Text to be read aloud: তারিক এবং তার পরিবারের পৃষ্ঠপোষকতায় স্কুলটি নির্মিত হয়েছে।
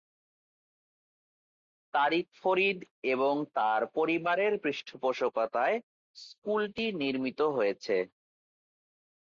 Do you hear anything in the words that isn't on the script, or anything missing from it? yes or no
yes